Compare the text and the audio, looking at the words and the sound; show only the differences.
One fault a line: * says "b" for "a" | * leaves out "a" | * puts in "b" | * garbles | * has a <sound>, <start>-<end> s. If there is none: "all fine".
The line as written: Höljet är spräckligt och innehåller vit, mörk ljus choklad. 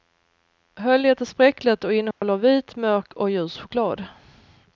* has a dropout, 2.1-2.2 s
* puts in "och"